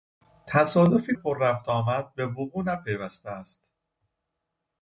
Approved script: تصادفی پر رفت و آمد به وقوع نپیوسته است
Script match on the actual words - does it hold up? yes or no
yes